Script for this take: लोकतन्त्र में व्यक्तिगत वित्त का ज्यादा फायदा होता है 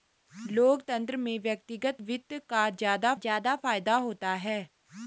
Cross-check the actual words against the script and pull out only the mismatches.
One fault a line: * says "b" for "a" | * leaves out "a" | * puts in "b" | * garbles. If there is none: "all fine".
* puts in "ज्यादा"